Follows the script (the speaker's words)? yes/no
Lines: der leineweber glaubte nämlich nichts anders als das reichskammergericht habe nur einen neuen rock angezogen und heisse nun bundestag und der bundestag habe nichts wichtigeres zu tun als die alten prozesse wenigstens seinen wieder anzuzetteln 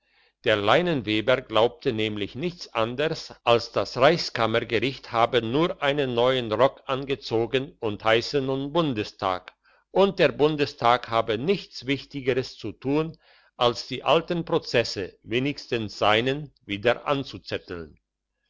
yes